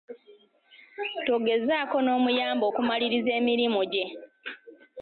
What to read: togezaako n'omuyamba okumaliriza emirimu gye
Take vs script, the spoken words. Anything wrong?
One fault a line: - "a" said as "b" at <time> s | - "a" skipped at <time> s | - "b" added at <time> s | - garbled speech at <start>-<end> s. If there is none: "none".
none